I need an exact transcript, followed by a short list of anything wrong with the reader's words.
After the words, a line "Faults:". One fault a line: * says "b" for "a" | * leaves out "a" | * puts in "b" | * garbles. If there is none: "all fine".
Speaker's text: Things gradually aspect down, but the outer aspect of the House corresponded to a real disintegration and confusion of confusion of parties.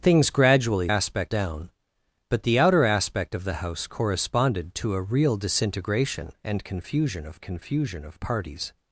Things gradually aspect down, but the outer aspect of the House corresponded to a real disintegration and confusion of confusion of parties.
Faults:
all fine